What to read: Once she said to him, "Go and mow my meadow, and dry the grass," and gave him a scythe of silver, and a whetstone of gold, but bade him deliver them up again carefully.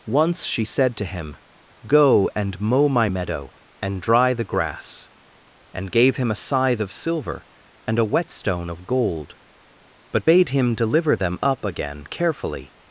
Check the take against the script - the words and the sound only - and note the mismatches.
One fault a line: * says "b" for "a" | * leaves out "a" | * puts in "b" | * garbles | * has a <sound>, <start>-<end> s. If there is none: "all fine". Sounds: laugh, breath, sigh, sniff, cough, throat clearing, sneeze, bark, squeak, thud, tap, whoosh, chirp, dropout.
all fine